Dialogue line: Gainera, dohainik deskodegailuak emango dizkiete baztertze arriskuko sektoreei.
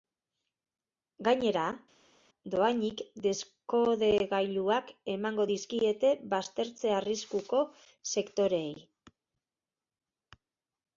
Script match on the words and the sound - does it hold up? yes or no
yes